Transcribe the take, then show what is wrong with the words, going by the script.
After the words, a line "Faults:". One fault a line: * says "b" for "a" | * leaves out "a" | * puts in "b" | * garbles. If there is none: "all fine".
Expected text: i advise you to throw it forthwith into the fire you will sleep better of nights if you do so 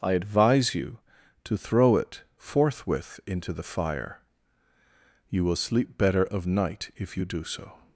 i advise you to throw it forthwith into the fire you will sleep better of night if you do so
Faults:
* says "night" for "nights"